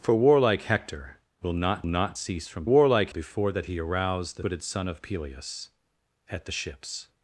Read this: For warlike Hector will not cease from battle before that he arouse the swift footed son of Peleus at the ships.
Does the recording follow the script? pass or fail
fail